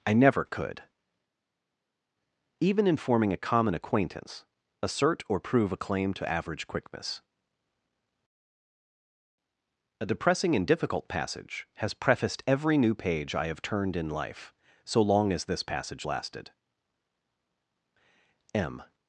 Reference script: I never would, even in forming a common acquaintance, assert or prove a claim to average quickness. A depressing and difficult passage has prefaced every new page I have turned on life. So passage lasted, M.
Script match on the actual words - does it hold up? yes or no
no